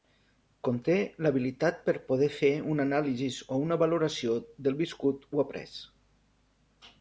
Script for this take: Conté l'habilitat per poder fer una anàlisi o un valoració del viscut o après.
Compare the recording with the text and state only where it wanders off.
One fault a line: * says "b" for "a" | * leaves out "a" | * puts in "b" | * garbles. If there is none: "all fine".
* says "una" for "un"